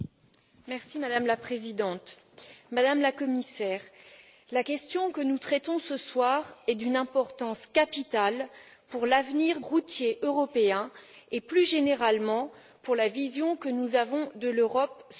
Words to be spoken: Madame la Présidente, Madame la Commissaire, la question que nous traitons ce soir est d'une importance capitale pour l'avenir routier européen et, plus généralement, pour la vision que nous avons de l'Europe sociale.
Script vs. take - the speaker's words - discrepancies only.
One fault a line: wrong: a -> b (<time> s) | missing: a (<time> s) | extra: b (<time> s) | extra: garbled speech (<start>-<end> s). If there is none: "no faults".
no faults